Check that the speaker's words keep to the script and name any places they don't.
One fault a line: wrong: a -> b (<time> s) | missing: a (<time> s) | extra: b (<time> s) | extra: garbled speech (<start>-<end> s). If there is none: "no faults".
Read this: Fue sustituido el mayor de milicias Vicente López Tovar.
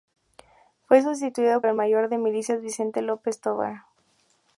no faults